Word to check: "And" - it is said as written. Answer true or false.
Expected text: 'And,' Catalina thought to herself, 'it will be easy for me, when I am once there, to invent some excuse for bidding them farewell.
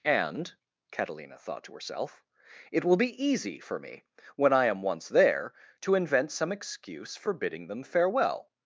true